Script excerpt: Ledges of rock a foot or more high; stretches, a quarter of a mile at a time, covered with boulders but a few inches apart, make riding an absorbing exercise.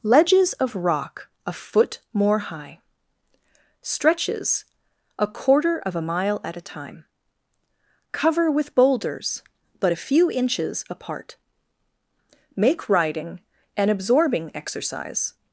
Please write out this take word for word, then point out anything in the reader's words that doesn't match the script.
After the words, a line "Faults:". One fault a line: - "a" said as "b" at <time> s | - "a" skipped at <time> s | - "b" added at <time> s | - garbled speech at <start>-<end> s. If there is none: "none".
Ledges of rock a foot more high; stretches, a quarter of a mile at a time, cover with boulders but a few inches apart, make riding an absorbing exercise.
Faults:
- "or" skipped at 2.0 s
- "covered" said as "cover" at 8.1 s